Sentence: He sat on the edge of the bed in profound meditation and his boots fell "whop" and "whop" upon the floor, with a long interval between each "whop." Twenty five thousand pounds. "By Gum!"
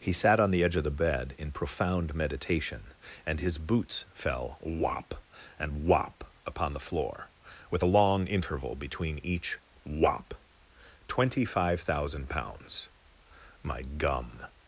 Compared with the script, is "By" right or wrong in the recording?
wrong